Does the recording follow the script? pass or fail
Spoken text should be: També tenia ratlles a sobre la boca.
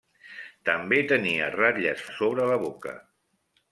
pass